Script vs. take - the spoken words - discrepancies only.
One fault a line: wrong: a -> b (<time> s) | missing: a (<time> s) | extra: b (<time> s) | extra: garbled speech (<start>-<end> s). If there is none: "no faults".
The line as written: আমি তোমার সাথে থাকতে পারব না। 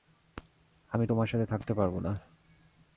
no faults